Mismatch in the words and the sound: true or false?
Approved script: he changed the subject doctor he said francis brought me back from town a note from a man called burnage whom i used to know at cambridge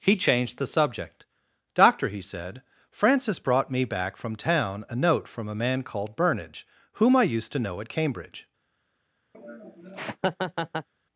true